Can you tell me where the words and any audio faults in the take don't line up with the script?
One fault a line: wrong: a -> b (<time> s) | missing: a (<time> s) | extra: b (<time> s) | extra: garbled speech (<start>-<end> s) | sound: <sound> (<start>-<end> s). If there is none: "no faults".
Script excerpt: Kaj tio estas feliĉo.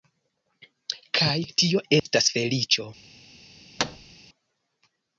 sound: dropout (2.0-2.1 s)
sound: thud (3.8-4.1 s)